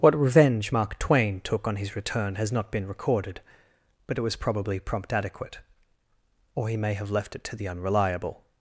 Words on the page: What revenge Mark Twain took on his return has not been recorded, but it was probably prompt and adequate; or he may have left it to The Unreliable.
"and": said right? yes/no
no